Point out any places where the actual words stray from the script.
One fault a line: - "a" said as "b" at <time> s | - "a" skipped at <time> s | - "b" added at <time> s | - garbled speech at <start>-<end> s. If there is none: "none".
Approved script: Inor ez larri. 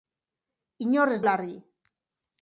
none